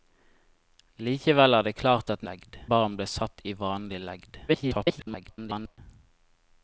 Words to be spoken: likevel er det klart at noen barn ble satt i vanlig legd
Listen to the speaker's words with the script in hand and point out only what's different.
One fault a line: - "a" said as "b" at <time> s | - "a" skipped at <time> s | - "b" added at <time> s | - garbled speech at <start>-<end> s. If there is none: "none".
- "noen" said as "legd" at 2.3 s
- garbled speech at 4.5-5.8 s